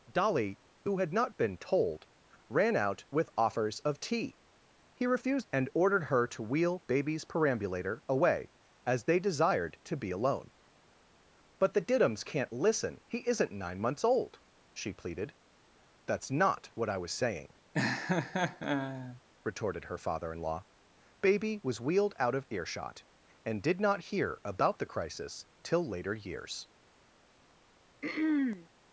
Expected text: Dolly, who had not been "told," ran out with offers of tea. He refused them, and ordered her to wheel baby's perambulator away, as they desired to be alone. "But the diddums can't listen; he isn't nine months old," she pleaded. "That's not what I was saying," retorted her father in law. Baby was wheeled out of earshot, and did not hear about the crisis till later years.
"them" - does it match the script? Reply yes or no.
no